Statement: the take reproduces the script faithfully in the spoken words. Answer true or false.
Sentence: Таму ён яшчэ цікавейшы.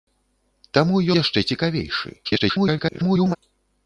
false